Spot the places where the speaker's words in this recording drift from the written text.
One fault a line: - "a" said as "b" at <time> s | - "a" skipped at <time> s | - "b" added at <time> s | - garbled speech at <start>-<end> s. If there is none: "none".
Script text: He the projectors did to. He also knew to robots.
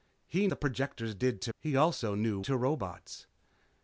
none